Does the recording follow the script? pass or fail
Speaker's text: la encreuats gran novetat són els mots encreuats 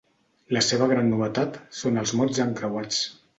fail